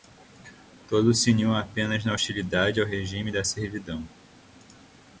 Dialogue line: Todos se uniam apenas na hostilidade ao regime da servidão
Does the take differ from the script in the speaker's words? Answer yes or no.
no